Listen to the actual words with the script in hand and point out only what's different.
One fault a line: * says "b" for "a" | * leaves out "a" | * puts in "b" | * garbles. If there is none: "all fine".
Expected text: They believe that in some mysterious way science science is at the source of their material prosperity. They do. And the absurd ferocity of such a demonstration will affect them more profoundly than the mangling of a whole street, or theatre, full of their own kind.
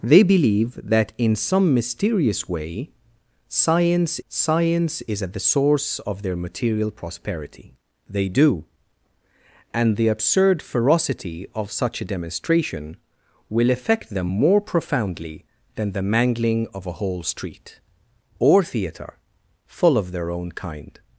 all fine